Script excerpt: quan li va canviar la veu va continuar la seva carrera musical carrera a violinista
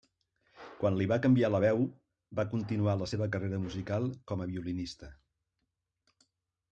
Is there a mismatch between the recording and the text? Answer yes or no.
yes